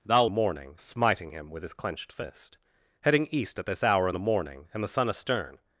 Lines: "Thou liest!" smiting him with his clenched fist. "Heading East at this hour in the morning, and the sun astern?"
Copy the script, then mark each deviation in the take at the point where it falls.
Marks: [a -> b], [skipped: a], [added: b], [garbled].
"Thou [liest!" -> morning] smiting him with his clenched fist. "Heading East at this hour in the morning, and the sun astern?"